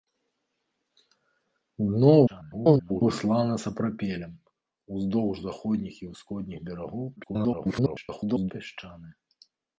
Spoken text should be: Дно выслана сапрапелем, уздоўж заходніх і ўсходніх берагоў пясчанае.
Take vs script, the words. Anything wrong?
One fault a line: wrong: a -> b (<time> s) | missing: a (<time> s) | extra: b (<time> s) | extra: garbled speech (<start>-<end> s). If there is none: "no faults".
extra: garbled speech (2.3-3.0 s)
extra: garbled speech (7.2-8.5 s)